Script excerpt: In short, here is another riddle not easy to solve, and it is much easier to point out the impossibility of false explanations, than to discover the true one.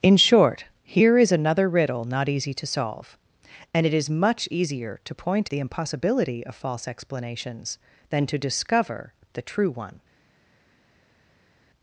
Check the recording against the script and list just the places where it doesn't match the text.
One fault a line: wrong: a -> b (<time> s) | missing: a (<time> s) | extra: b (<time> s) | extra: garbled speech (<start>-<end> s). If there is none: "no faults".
missing: out (5.5 s)